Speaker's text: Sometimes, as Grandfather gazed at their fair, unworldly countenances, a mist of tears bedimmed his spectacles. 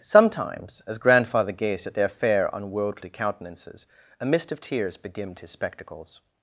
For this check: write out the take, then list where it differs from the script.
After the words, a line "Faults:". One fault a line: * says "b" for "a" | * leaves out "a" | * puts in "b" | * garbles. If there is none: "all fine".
Sometimes, as Grandfather gazed at their fair, unworldly countenances, a mist of tears bedimmed his spectacles.
Faults:
all fine